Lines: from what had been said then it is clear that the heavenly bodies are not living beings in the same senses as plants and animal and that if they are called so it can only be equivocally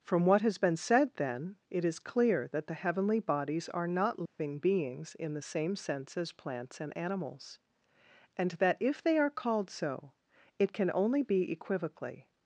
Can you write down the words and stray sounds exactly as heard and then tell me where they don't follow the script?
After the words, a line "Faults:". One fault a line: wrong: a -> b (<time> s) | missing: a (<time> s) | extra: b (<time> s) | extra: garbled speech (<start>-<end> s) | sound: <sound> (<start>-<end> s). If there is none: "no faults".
from what has been said then it is clear that the heavenly bodies are not living beings in the same sense as plants and animals and that if they are called so it can only be equivocally
Faults:
wrong: had -> has (0.4 s)
sound: dropout (4.3-4.4 s)
wrong: senses -> sense (5.8 s)
wrong: animal -> animals (7.0 s)